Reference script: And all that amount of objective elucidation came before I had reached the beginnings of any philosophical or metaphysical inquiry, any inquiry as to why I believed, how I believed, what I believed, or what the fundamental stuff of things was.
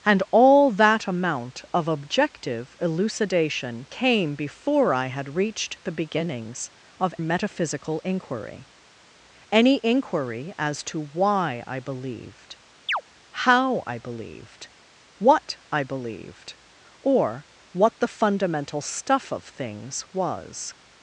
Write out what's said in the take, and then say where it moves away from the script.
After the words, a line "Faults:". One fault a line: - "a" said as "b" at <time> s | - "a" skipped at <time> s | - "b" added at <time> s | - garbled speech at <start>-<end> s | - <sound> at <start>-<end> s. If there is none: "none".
And all that amount of objective elucidation came before I had reached the beginnings of metaphysical inquiry, any inquiry as to why I believed, how I believed, what I believed, or what the fundamental stuff of things was.
Faults:
- "any philosophical or" skipped at 7.1 s
- chirp at 12.9-13.0 s